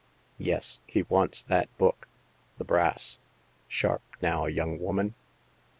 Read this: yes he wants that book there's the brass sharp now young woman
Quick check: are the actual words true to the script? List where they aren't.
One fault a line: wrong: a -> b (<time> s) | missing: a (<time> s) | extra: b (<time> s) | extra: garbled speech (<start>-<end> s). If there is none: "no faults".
missing: there's (2.1 s)